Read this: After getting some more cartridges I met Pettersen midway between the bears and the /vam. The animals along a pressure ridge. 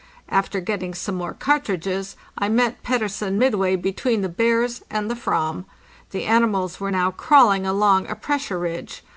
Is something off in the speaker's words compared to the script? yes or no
yes